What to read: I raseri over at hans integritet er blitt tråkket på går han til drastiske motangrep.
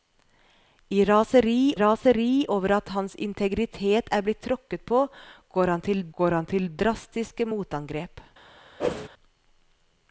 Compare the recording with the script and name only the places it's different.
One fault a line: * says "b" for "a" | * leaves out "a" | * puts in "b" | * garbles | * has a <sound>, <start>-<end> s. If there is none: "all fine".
* puts in "raseri"
* puts in "går han til"
* has a whoosh, 8.8-9.1 s